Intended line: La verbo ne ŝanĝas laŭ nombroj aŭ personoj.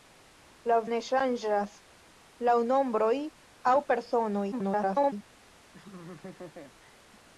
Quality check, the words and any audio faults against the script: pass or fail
fail